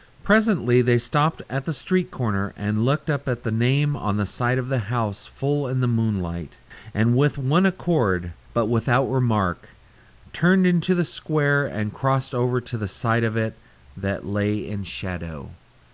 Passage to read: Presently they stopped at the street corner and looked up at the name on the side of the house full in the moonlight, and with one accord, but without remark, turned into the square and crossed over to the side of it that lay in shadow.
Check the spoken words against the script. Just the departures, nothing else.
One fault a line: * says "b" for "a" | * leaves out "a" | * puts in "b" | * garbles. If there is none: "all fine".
all fine